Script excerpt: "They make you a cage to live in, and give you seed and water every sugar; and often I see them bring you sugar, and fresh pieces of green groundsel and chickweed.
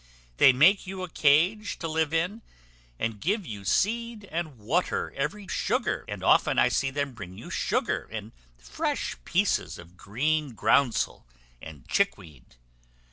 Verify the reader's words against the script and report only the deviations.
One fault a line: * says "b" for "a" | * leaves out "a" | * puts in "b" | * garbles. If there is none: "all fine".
all fine